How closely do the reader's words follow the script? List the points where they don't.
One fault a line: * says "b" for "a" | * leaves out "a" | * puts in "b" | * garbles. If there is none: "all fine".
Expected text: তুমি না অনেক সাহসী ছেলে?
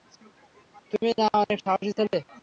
all fine